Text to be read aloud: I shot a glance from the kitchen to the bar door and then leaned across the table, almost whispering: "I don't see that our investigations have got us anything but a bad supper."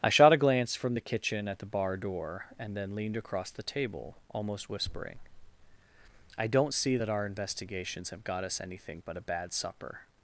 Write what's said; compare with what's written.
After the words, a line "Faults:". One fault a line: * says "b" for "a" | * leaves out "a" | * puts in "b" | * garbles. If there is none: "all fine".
I shot a glance from the kitchen at the bar door and then leaned across the table, almost whispering: "I don't see that our investigations have got us anything but a bad supper."
Faults:
* says "at" for "to"